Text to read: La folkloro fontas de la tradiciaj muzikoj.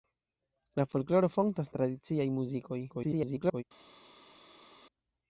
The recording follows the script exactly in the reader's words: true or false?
false